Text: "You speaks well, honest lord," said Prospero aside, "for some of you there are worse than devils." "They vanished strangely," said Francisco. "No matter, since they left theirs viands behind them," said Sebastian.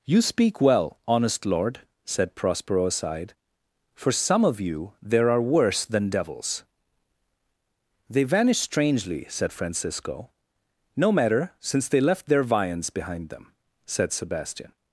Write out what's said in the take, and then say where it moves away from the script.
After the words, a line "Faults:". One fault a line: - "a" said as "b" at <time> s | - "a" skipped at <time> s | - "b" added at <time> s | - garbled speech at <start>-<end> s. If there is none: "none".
"You speak well, honest lord," said Prospero aside, "for some of you there are worse than devils." "They vanished strangely," said Francisco. "No matter, since they left their viands behind them," said Sebastian.
Faults:
- "speaks" said as "speak" at 0.2 s
- "theirs" said as "their" at 12.3 s